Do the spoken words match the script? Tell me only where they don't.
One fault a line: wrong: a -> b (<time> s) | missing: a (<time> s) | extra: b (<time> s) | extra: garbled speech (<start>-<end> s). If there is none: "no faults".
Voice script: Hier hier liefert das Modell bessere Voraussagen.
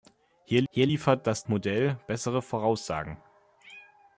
no faults